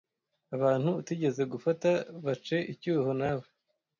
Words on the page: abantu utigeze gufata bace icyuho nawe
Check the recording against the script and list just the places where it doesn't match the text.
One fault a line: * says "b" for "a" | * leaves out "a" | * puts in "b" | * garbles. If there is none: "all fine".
all fine